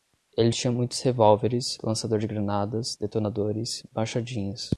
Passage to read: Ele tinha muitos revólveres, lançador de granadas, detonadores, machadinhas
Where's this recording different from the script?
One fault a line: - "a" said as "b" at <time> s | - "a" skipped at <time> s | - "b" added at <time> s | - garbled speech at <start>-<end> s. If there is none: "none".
none